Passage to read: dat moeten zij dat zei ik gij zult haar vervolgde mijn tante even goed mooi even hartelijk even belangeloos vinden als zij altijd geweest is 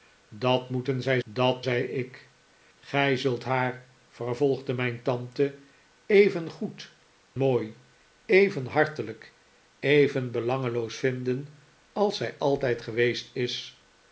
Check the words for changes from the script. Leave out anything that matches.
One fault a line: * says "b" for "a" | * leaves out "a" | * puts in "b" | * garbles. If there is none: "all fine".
all fine